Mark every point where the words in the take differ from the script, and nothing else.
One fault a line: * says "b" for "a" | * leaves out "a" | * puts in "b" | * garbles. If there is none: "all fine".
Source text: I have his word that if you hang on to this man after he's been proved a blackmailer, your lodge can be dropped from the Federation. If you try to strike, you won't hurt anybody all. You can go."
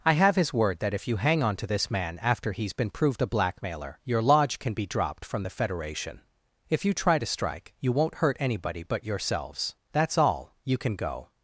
* puts in "but yourselves That's"